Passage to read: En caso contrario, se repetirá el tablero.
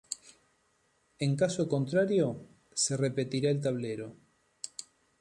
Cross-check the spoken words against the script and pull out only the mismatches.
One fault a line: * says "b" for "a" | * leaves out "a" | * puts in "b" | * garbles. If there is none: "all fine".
all fine